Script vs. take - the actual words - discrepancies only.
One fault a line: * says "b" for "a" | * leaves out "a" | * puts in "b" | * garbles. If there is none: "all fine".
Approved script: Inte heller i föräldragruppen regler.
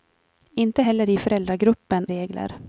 all fine